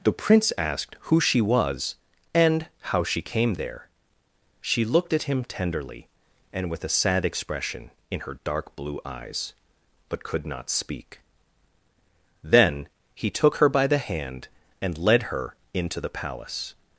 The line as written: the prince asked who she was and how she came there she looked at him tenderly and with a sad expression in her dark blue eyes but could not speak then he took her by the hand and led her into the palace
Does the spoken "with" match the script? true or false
true